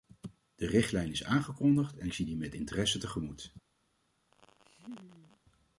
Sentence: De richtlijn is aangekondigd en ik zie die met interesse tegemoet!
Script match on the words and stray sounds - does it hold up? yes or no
no